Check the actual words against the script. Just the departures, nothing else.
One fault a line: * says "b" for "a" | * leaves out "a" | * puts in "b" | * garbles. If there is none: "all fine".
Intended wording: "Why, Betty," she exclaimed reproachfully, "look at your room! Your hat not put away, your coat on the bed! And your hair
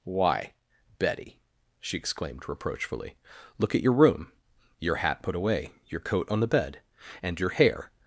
* leaves out "not"